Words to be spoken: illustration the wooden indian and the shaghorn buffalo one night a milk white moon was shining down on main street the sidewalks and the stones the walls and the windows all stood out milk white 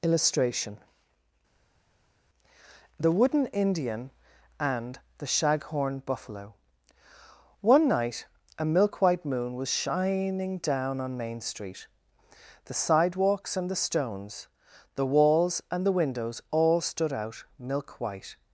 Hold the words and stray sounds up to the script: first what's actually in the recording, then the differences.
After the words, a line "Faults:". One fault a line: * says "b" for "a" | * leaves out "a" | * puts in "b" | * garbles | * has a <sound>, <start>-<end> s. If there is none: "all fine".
illustration the wooden indian and the shaghorn buffalo one night a milk white moon was shining down on main street the sidewalks and the stones the walls and the windows all stood out milk white
Faults:
all fine